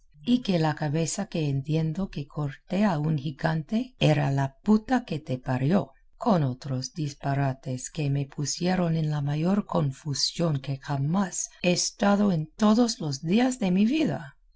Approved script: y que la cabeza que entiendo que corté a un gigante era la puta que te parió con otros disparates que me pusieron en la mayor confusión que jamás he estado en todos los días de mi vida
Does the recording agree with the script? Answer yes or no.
yes